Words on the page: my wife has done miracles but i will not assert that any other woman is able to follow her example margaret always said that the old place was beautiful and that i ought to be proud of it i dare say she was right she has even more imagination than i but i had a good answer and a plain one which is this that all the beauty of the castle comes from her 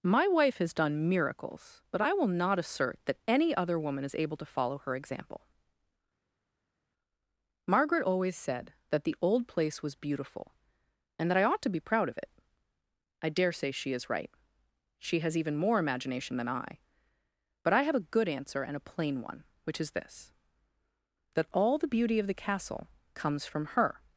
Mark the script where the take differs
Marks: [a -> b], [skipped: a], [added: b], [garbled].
my wife has done miracles but i will not assert that any other woman is able to follow her example margaret always said that the old place was beautiful and that i ought to be proud of it i dare say she [was -> is] right she has even more imagination than i but i [had -> have] a good answer and a plain one which is this that all the beauty of the castle comes from her